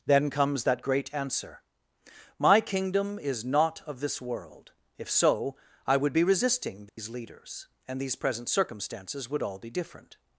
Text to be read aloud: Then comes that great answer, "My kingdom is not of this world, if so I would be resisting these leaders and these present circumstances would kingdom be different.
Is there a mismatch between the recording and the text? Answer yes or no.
yes